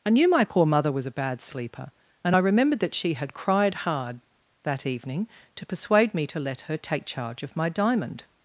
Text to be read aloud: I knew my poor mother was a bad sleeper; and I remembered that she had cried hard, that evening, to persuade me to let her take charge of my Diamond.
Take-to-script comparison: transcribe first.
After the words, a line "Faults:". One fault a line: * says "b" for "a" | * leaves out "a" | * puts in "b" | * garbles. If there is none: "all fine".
I knew my poor mother was a bad sleeper; and I remembered that she had cried hard, that evening, to persuade me to let her take charge of my Diamond.
Faults:
all fine